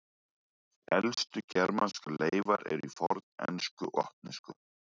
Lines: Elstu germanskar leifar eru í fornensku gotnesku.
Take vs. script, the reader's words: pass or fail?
pass